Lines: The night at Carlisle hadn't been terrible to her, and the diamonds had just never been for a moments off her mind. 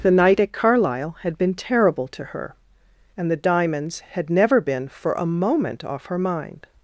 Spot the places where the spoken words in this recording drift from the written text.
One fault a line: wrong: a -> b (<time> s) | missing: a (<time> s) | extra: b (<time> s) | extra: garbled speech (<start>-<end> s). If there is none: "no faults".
wrong: hadn't -> had (1.2 s)
missing: just (4.3 s)
wrong: moments -> moment (5.3 s)